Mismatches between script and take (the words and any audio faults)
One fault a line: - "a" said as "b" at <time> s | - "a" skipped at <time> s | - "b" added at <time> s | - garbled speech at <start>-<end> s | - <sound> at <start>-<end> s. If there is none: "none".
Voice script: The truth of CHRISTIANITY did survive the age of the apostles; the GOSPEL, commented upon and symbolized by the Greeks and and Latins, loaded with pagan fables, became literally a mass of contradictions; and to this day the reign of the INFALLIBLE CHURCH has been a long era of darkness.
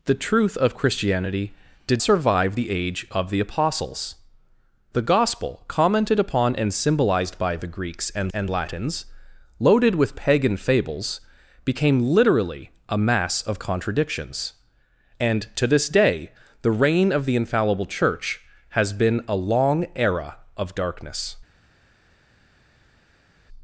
none